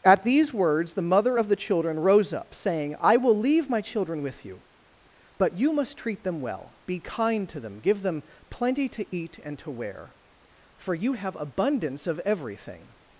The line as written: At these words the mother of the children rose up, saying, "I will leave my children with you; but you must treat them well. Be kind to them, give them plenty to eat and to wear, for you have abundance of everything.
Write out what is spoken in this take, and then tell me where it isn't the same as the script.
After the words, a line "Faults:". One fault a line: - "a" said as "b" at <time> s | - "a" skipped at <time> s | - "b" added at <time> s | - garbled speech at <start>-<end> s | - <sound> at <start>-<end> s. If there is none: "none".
At these words the mother of the children rose up, saying, "I will leave my children with you; but you must treat them well. Be kind to them, give them plenty to eat and to wear, for you have abundance of everything.
Faults:
none